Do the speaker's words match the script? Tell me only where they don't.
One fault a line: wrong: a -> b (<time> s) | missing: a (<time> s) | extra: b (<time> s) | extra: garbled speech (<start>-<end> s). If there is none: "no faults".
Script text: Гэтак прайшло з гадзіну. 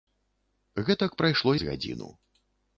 no faults